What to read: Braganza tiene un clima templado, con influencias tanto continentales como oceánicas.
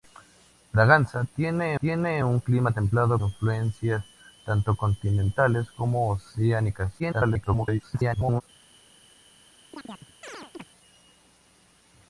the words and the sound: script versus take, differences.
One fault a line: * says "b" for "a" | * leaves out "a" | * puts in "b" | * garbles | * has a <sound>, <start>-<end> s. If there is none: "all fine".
* puts in "tiene"
* leaves out "con"
* garbles
* has a chirp, 9.7-10.6 s